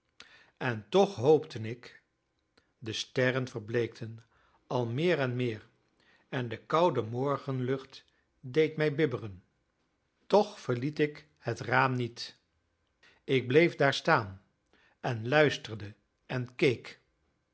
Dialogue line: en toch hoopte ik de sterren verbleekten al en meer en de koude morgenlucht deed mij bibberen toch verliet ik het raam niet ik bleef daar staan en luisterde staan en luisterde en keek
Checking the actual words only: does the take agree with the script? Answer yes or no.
no